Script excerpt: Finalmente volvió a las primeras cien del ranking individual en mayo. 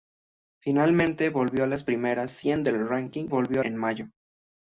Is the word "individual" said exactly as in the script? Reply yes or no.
no